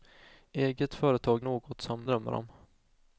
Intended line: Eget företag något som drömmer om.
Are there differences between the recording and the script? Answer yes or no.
no